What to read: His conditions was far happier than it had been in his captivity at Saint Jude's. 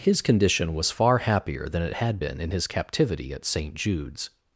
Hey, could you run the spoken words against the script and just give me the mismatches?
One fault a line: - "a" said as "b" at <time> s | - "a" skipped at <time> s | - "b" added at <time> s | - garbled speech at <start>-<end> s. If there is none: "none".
- "conditions" said as "condition" at 0.2 s